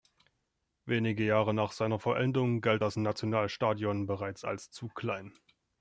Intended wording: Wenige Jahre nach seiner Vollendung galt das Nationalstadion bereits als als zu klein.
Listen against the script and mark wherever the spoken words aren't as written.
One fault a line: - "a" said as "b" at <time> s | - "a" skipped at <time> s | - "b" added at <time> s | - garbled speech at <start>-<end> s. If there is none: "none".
- "als" skipped at 4.7 s